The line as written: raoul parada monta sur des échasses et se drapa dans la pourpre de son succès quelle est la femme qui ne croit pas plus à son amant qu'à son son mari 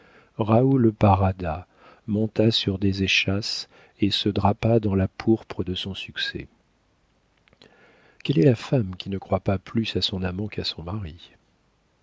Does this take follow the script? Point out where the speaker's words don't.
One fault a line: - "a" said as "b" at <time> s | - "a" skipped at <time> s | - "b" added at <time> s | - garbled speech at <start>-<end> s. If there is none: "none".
- "son" skipped at 10.8 s